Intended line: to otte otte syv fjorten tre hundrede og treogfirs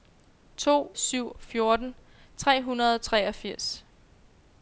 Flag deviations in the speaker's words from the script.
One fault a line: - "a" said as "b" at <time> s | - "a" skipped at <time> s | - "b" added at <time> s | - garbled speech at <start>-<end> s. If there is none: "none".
- "otte otte" skipped at 0.9 s